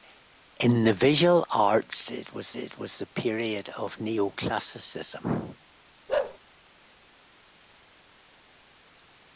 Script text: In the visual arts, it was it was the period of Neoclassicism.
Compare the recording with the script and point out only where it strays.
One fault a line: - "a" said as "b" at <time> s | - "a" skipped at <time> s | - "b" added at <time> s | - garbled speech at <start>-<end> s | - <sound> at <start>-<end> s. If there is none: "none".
- bark at 6.1-6.4 s